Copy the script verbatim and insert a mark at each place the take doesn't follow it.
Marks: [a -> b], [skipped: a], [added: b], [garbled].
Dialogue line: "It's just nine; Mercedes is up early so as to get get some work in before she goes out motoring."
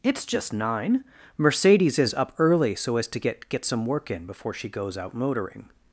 "It's just nine; Mercedes is up early so as to get get some work in before she goes out motoring."